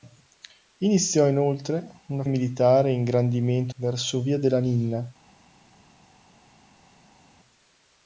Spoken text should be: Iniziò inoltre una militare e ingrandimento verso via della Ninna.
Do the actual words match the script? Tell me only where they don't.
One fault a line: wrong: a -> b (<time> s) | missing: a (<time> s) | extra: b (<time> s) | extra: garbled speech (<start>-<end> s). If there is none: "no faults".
no faults